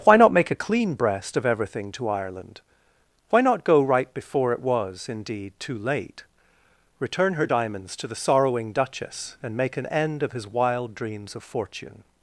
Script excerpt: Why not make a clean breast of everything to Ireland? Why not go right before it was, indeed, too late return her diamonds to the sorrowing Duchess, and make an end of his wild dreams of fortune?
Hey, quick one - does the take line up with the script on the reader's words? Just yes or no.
yes